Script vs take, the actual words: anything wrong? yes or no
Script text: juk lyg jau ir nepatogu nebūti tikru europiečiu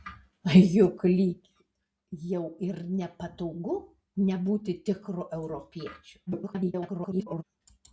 yes